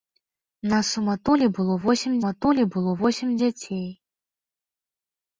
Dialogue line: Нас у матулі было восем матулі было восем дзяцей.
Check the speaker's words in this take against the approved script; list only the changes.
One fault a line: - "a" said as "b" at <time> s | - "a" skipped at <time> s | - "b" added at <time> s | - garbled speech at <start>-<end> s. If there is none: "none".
none